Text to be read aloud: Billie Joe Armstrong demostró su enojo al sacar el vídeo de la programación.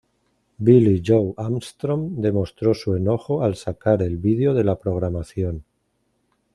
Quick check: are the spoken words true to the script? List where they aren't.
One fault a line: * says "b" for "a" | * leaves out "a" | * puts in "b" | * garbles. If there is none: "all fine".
all fine